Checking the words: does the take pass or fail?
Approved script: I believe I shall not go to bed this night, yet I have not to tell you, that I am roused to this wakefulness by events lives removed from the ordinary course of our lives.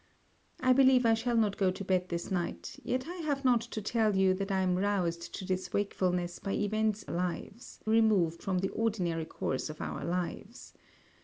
pass